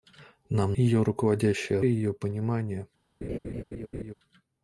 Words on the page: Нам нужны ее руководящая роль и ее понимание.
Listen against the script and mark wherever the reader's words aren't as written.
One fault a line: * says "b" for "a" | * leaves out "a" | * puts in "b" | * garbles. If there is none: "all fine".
* leaves out "нужны"
* leaves out "роль"